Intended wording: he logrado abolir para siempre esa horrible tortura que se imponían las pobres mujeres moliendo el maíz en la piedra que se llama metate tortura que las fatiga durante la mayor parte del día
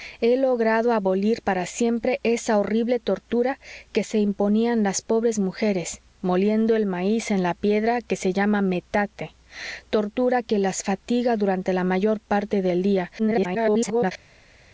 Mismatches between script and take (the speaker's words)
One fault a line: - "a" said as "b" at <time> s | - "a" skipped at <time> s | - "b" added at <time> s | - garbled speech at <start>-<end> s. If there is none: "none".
- garbled speech at 13.2-14.1 s